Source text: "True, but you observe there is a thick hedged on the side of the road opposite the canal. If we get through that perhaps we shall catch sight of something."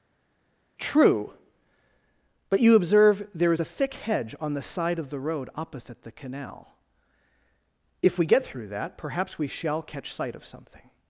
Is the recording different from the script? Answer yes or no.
yes